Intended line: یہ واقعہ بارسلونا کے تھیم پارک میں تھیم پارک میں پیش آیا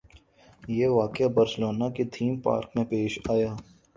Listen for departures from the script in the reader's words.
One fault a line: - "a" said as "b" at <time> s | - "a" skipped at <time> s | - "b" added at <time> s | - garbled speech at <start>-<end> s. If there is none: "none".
- "تھیم پارک میں" skipped at 2.9 s